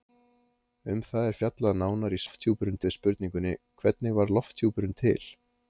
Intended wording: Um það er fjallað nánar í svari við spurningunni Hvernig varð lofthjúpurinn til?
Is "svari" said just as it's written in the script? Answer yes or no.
no